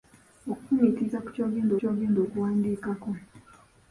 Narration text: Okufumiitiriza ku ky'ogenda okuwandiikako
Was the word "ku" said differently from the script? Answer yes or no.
no